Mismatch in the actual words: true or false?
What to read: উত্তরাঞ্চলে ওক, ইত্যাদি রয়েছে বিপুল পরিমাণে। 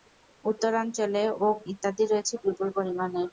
false